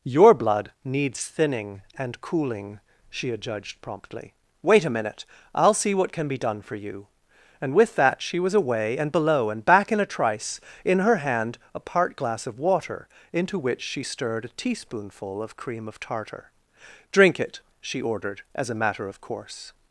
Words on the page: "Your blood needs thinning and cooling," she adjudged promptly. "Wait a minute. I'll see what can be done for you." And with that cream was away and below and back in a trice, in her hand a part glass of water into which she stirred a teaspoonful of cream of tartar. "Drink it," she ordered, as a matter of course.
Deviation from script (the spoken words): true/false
true